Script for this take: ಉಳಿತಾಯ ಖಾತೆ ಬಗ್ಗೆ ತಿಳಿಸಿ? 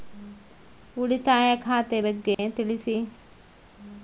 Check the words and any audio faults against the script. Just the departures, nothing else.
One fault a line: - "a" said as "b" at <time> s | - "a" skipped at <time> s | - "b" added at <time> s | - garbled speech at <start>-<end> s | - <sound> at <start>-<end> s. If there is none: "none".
- dropout at 2.3-2.4 s